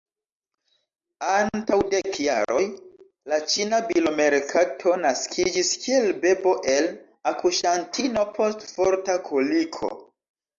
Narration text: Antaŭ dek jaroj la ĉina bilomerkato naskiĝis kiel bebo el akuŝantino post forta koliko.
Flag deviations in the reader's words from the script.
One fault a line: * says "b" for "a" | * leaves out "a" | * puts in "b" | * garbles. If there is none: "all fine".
all fine